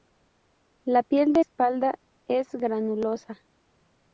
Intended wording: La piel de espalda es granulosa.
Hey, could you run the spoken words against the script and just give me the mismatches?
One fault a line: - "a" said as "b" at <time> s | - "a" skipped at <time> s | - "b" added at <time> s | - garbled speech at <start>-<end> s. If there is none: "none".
none